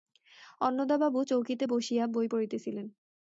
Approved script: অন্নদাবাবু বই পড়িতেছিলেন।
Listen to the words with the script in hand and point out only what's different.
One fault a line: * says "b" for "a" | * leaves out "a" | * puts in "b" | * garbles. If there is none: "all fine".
* puts in "চৌকিতে বসিয়া"